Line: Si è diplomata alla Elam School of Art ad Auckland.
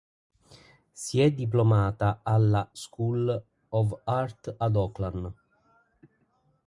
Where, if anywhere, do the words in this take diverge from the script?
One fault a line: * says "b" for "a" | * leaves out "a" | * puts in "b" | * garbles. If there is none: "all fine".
* leaves out "Elam"